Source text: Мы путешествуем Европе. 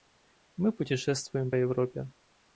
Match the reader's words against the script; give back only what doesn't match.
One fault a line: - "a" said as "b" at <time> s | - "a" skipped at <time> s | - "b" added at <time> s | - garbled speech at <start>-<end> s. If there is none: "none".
none